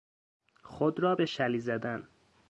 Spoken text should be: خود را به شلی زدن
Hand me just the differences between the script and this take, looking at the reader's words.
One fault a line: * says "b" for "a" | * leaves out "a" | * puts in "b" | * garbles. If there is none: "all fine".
all fine